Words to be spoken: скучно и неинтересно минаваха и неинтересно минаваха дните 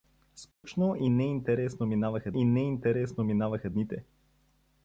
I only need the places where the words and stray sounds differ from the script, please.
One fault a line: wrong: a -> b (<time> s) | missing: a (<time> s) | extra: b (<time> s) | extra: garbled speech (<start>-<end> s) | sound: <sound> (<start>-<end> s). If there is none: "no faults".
sound: dropout (0.5-0.6 s)